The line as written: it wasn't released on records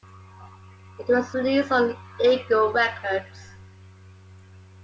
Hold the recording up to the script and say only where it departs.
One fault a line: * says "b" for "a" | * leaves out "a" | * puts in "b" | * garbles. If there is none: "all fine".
* says "was" for "wasn't"
* puts in "eagle"